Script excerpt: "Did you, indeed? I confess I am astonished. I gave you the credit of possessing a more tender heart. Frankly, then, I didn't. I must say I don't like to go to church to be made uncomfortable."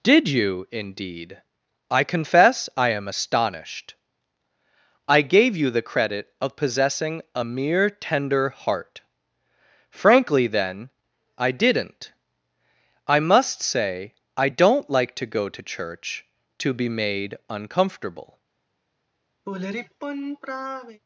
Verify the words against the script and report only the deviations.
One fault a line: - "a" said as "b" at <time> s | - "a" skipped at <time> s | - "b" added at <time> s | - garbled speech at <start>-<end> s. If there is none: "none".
- "more" said as "mere" at 7.4 s